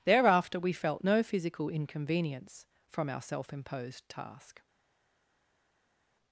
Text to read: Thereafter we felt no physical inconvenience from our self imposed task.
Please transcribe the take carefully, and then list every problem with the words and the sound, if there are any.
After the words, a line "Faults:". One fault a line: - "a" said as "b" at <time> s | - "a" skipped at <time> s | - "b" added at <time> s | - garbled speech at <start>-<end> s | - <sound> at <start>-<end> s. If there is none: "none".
Thereafter we felt no physical inconvenience from our self imposed task.
Faults:
none